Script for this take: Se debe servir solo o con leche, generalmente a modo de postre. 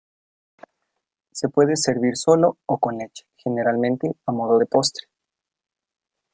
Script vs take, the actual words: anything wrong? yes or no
yes